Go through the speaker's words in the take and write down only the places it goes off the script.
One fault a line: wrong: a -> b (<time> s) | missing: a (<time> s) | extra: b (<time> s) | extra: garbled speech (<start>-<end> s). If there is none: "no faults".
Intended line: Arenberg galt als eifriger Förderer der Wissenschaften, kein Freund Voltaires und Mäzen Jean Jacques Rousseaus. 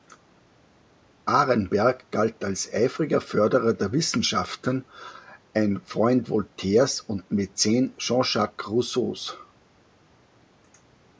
wrong: kein -> ein (5.5 s)